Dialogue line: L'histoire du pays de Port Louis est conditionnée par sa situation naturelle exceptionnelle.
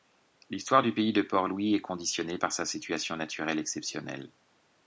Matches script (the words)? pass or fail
pass